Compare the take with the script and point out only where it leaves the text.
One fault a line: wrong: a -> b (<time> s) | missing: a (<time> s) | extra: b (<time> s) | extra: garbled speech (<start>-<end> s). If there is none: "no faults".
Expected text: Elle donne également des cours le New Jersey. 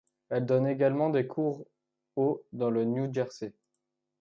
extra: au dans (2.1 s)